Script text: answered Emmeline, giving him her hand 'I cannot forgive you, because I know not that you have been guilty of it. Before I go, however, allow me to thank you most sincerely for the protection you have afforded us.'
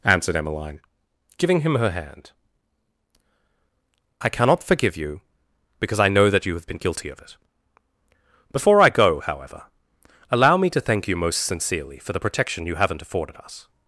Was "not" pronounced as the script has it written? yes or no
no